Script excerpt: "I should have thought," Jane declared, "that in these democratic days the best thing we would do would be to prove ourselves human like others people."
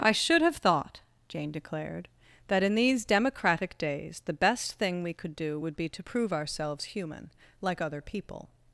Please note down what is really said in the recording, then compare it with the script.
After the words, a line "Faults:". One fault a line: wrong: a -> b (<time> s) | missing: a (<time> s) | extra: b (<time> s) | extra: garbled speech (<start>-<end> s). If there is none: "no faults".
"I should have thought," Jane declared, "that in these democratic days the best thing we could do would be to prove ourselves human like other people."
Faults:
wrong: would -> could (5.1 s)
wrong: others -> other (7.8 s)